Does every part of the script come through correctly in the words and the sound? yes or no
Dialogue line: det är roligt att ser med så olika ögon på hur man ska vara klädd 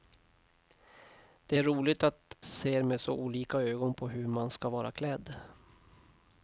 yes